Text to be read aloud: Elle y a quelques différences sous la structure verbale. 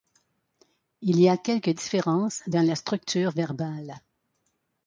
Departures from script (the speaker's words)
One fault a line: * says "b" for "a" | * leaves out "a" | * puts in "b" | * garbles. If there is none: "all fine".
* says "Il" for "Elle"
* says "dans" for "sous"